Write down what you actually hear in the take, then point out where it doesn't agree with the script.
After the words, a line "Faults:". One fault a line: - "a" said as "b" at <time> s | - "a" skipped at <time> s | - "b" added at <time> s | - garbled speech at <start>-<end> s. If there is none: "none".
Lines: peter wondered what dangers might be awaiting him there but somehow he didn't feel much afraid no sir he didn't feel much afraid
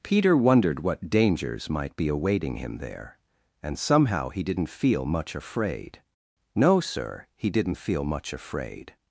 peter wondered what dangers might be awaiting him there and somehow he didn't feel much afraid no sir he didn't feel much afraid
Faults:
- "but" said as "and" at 3.6 s